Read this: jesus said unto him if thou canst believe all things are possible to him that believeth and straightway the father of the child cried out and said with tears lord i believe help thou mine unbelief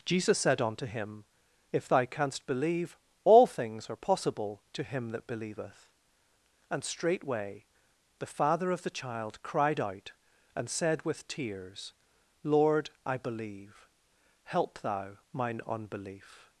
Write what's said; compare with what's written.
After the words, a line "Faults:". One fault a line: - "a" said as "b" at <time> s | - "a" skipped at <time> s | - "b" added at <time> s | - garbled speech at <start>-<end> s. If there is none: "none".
jesus said unto him if thou canst believe all things are possible to him that believeth and straightway the father of the child cried out and said with tears lord i believe help thou mine unbelief
Faults:
none